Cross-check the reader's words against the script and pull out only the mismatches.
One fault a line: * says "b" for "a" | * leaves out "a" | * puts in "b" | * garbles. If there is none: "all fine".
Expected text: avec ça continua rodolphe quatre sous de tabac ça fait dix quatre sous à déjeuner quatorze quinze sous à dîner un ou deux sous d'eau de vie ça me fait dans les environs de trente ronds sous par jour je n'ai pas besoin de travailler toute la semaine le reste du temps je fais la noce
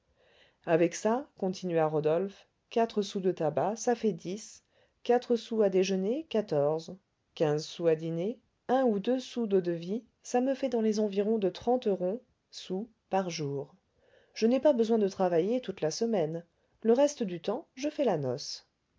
all fine